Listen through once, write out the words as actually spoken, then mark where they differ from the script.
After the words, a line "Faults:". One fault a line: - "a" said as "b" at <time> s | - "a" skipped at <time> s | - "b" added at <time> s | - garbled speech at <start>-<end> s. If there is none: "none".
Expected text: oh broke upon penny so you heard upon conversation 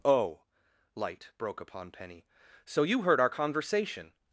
oh light broke upon penny so you heard our conversation
Faults:
- "light" added at 0.9 s
- "upon" said as "our" at 3.2 s